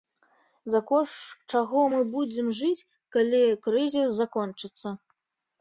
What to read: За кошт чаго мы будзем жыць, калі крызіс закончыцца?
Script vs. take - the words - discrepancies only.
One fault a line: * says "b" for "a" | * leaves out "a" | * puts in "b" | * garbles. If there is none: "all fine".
all fine